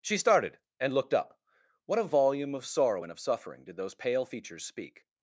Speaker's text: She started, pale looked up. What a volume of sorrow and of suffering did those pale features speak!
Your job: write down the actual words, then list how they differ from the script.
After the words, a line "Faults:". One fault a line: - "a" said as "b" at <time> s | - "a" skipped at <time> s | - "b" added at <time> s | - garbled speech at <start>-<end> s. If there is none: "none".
She started, and looked up. What a volume of sorrow and of suffering did those pale features speak!
Faults:
- "pale" said as "and" at 0.8 s